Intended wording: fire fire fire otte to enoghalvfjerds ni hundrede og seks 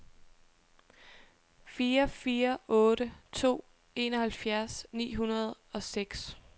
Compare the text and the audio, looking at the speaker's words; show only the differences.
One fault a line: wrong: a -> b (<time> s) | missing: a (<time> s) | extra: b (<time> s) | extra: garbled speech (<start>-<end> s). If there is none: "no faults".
missing: fire (2.6 s)